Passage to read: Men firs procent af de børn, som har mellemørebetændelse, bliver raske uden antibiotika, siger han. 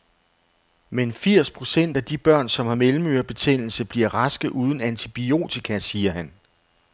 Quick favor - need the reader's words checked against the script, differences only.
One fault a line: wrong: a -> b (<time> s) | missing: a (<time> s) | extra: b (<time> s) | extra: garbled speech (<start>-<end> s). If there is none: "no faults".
no faults